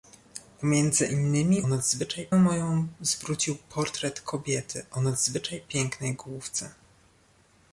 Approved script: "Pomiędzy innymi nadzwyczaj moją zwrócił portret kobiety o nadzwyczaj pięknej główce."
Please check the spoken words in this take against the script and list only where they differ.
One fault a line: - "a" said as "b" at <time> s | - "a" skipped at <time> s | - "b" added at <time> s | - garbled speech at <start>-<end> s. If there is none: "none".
none